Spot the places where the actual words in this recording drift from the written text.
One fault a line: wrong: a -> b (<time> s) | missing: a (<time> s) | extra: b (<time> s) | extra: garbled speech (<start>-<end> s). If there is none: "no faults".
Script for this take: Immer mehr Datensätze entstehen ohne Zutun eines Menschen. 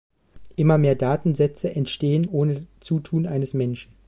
no faults